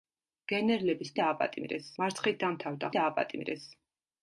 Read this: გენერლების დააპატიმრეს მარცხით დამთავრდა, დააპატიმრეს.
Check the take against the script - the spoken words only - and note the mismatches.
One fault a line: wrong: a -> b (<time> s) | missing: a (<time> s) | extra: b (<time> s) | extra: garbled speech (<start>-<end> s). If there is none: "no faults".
no faults